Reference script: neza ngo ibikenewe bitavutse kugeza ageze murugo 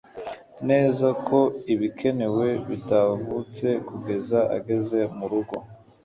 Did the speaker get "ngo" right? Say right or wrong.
wrong